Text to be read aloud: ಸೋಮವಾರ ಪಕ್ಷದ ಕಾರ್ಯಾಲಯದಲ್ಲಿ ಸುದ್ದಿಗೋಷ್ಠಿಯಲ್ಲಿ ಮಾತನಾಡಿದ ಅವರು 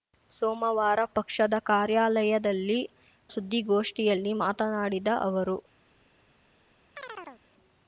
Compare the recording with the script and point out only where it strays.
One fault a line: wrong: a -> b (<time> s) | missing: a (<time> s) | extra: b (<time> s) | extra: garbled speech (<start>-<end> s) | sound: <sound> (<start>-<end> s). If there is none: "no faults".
sound: chirp (7.0-7.4 s)